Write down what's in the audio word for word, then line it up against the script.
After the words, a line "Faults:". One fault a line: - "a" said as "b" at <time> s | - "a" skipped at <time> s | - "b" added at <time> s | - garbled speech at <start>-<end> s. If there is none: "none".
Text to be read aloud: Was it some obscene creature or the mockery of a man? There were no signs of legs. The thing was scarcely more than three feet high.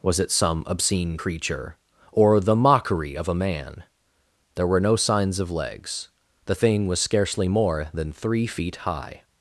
Was it some obscene creature or the mockery of a man? There were no signs of legs. The thing was scarcely more than three feet high.
Faults:
none